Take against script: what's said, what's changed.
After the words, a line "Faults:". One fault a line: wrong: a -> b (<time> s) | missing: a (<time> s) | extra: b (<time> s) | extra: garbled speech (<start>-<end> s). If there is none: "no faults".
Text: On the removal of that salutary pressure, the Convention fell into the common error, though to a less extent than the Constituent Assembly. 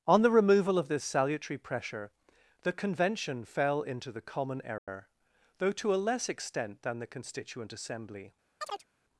On the removal of this salutary pressure, the Convention fell into the common error, though to a less extent than the Constituent Assembly.
Faults:
wrong: that -> this (0.9 s)